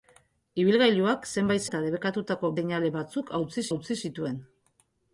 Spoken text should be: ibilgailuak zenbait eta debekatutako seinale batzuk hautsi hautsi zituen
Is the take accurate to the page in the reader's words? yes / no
yes